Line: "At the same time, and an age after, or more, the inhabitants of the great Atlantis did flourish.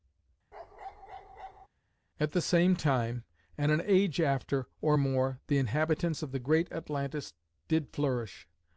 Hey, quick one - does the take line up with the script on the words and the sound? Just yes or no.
no